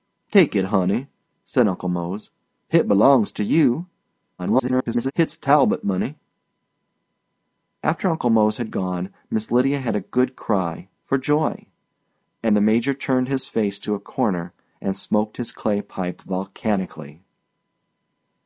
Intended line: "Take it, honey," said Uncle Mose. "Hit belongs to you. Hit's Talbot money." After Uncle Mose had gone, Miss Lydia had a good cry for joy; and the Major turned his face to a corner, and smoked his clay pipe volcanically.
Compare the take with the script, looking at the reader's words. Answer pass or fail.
fail